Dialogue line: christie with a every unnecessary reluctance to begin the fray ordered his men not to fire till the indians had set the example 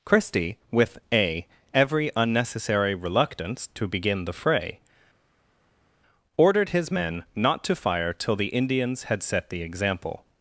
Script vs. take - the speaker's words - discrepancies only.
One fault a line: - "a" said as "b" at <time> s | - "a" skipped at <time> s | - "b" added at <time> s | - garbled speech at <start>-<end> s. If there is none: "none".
none